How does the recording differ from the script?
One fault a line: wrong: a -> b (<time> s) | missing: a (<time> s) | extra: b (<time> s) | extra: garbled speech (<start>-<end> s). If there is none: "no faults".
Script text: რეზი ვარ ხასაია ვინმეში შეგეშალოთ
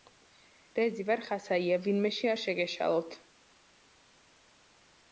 extra: არ (2.3 s)